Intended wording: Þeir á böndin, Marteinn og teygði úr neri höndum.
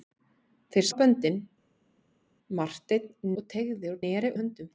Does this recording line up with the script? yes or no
yes